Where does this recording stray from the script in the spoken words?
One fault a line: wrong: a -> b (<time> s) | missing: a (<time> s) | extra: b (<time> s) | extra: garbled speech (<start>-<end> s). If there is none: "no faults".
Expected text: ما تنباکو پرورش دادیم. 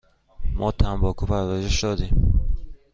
no faults